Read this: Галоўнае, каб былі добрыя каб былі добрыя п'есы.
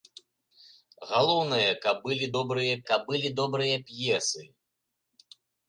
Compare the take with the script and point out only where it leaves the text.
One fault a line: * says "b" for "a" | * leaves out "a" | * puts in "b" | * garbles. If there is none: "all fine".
all fine